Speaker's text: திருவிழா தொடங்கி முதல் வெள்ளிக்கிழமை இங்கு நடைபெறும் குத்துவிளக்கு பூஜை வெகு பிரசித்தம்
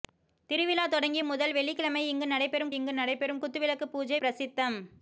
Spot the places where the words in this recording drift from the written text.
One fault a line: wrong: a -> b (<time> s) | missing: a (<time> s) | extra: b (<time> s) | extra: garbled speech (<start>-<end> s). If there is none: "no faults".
extra: இங்கு நடைபெறும் (2.7 s)
missing: வெகு (4.2 s)